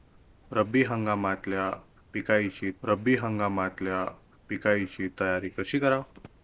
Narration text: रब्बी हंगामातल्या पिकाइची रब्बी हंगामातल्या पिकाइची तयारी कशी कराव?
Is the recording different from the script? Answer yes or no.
no